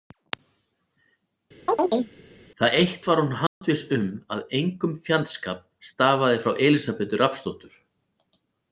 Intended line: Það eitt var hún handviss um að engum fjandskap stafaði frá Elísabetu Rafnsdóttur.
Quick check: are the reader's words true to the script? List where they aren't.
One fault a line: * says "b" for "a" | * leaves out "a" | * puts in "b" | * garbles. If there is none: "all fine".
all fine